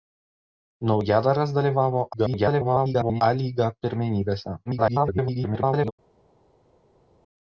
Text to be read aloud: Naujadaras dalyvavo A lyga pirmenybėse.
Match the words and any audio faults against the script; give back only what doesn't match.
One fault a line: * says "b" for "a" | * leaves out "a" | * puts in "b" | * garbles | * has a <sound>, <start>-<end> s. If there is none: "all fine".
* garbles
* garbles